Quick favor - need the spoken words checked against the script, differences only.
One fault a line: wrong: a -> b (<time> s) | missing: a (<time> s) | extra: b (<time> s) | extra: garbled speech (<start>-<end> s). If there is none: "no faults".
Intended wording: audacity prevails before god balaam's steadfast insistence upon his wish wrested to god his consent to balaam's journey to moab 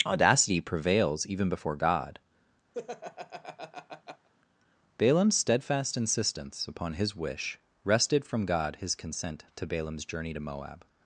extra: even (1.3 s)
wrong: to -> from (8.3 s)